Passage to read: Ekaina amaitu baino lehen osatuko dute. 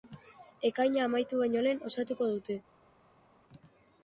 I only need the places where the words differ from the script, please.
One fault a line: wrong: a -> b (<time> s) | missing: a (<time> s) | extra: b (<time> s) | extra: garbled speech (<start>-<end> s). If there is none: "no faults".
no faults